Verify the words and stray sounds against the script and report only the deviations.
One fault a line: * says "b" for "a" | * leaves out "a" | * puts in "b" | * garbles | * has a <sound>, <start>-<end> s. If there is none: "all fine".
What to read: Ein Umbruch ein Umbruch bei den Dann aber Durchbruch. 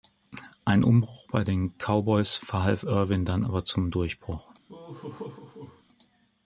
* says "bei den Cowboys verhalf Irvin" for "ein Umbruch bei den"
* puts in "zum"
* has a laugh, 4.7-5.8 s